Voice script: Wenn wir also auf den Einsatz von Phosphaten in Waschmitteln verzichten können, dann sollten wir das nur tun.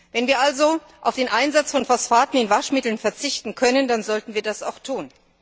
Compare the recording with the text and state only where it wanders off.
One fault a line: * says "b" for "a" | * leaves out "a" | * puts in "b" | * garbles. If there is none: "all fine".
* says "auch" for "nur"